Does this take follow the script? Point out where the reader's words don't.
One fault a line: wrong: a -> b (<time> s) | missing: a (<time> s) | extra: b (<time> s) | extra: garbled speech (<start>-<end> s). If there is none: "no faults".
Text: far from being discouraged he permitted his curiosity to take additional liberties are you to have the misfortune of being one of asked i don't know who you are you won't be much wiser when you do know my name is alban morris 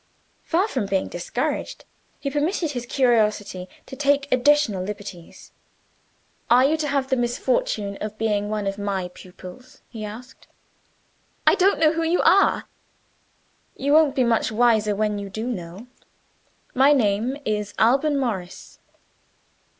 extra: my pupils he (8.8 s)